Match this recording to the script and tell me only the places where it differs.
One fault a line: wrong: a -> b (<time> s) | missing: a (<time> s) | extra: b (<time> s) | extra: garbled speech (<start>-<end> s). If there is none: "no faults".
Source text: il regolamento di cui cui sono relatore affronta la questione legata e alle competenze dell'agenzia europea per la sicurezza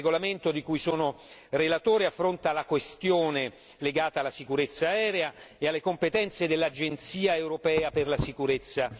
missing: cui (0.8 s)
extra: alla sicurezza aerea (4.2 s)